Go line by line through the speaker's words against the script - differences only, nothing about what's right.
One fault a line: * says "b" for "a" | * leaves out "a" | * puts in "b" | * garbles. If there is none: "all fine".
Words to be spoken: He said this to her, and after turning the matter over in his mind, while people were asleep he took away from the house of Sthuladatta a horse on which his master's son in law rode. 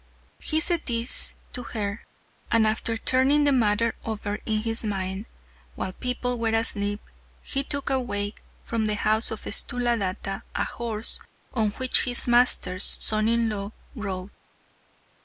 all fine